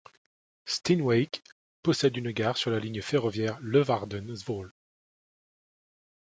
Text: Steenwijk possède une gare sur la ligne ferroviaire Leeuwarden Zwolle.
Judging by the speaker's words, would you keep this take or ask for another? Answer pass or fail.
pass